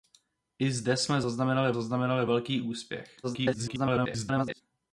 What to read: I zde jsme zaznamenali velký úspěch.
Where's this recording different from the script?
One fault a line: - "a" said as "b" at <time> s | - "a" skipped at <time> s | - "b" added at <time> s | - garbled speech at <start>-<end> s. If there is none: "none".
- "zaznamenali" added at 1.7 s
- garbled speech at 3.2-4.6 s